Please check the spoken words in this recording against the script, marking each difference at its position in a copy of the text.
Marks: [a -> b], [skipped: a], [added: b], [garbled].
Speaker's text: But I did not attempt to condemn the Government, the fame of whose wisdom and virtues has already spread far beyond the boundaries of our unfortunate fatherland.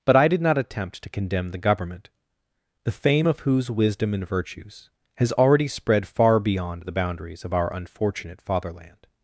But I did not attempt to condemn the Government, the fame of whose wisdom and virtues has already spread far beyond the boundaries of our unfortunate fatherland.